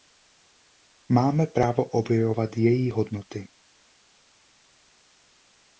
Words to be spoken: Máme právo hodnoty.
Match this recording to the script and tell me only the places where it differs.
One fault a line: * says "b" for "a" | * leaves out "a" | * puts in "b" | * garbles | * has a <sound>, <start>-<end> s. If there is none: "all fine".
* puts in "objevovat její"